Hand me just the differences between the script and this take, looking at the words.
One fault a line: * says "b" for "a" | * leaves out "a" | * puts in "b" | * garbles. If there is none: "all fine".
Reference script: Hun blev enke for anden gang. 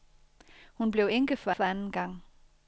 * puts in "for"